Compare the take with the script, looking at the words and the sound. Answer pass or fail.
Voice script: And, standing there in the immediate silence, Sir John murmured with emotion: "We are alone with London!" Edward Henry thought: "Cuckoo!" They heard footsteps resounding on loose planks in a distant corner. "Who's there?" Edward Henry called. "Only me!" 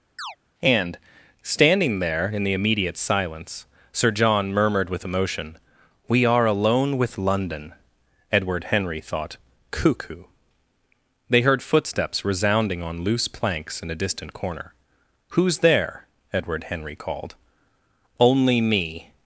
fail